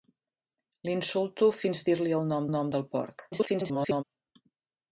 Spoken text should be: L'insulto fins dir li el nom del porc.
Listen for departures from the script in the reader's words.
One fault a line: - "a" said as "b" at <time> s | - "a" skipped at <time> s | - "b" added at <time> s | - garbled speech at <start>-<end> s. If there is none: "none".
- "nom" added at 2.5 s
- garbled speech at 3.3-4.0 s